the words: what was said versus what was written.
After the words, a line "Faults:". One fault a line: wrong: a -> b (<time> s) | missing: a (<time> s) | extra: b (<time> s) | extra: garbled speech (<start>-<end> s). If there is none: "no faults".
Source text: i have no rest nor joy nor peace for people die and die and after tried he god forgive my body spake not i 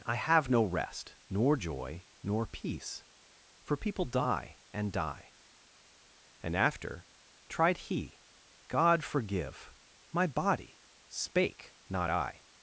i have no rest nor joy nor peace for people die and die and after tried he god forgive my body spake not i
Faults:
no faults